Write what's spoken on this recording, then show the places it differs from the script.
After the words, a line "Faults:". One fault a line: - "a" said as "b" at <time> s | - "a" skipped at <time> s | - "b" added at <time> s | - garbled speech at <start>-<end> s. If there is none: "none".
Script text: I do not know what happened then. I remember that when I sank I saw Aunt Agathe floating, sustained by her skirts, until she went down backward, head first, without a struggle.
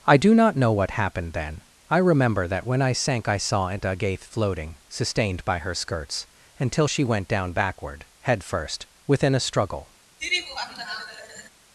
I do not know what happened then. I remember that when I sank I saw Aunt Agathe floating, sustained by her skirts, until she went down backward, head first, within a struggle.
Faults:
- "without" said as "within" at 9.1 s